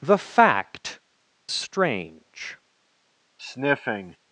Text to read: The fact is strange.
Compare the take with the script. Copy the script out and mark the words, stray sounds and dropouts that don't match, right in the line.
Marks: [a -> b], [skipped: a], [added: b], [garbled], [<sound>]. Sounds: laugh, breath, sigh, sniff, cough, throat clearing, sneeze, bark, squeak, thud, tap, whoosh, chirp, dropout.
The fact [skipped: is] strange. [sniff]